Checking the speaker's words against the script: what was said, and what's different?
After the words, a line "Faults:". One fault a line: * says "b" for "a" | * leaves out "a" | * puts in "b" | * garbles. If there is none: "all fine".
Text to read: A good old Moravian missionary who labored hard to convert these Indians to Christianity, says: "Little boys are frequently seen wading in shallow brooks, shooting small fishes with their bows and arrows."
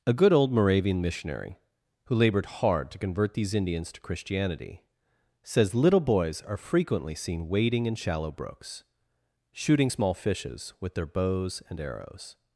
A good old Moravian missionary who labored hard to convert these Indians to Christianity, says: "Little boys are frequently seen wading in shallow brooks, shooting small fishes with their bows and arrows."
Faults:
all fine